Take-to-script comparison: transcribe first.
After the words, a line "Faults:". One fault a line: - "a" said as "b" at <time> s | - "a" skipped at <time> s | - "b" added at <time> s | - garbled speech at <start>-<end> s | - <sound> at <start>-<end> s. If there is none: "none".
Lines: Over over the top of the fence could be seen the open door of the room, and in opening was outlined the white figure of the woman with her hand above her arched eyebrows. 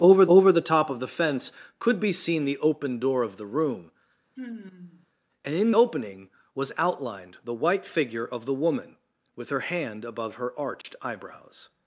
Over over the top of the fence could be seen the open door of the room, and in opening was outlined the white figure of the woman with her hand above her arched eyebrows.
Faults:
- sigh at 4.4-5.1 s
- dropout at 10.8-10.8 s